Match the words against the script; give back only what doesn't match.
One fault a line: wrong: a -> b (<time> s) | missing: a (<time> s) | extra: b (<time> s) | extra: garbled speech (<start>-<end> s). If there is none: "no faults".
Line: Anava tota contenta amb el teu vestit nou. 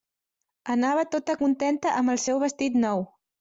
wrong: teu -> seu (2.3 s)